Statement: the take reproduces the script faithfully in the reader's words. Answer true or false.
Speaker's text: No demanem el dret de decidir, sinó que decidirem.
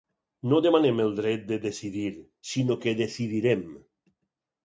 true